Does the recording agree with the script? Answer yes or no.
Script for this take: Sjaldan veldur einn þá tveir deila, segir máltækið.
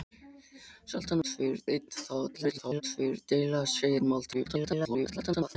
no